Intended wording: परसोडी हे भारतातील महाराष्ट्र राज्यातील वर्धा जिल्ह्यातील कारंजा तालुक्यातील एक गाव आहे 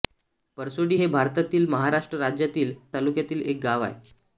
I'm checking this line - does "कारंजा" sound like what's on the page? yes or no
no